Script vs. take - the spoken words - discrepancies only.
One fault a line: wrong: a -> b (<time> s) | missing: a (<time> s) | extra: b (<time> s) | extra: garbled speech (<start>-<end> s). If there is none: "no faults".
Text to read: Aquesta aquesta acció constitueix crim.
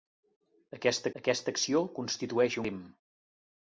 no faults